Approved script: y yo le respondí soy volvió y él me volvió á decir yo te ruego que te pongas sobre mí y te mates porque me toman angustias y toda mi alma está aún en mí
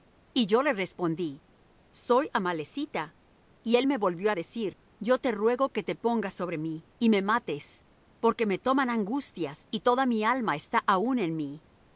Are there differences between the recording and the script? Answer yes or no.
yes